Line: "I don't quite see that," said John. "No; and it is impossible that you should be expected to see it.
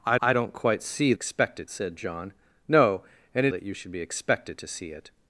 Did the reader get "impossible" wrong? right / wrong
wrong